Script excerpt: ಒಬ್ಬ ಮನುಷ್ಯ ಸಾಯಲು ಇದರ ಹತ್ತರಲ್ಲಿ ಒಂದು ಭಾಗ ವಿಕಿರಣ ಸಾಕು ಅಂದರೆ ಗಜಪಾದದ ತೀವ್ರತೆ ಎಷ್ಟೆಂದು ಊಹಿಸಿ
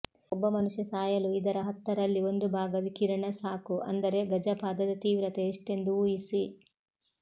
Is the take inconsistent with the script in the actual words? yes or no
no